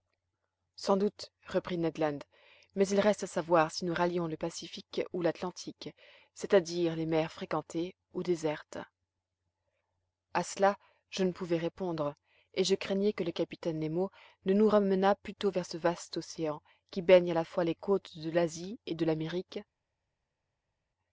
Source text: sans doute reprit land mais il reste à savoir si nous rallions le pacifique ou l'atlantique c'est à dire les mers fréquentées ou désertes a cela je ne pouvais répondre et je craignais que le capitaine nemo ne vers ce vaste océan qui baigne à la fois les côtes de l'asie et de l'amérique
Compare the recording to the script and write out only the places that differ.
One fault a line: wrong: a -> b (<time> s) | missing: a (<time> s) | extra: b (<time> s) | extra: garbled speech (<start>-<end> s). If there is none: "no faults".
extra: ned (1.8 s)
extra: nous ramenât plutôt (14.5 s)